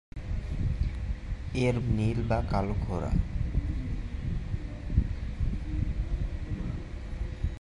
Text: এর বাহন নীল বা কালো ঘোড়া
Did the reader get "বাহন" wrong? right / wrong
wrong